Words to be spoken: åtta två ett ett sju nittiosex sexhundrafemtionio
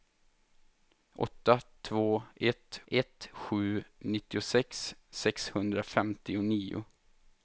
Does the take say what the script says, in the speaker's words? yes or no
yes